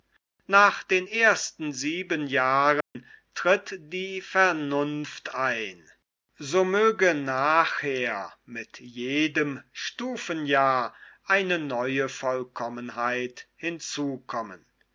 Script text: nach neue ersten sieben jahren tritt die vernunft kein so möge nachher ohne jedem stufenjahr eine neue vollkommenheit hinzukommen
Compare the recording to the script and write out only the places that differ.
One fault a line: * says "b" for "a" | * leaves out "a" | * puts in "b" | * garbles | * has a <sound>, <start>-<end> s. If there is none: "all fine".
* says "den" for "neue"
* has a dropout, 2.8-3.0 s
* says "ein" for "kein"
* says "mit" for "ohne"